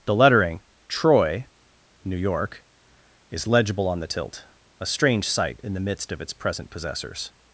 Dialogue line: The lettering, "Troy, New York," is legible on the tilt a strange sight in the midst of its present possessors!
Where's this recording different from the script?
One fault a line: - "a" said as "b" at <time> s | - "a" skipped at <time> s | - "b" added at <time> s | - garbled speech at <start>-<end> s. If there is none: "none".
none